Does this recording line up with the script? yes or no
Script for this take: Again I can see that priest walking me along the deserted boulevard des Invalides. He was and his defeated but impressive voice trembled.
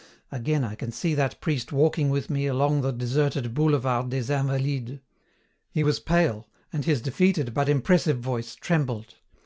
no